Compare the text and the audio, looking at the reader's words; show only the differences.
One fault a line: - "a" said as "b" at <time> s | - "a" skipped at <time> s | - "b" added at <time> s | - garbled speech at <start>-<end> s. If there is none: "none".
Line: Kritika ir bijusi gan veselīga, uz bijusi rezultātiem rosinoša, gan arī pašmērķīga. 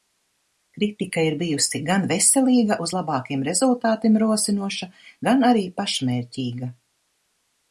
- "bijusi" said as "labākiem" at 3.0 s